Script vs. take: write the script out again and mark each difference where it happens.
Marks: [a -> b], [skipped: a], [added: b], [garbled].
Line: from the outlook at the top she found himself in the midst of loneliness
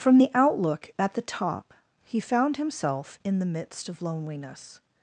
from the outlook at the top [she -> he] found himself in the midst of loneliness